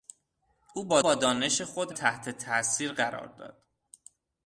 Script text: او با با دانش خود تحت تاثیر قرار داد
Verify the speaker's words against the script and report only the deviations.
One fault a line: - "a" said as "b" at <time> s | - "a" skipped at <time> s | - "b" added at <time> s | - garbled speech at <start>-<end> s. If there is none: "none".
none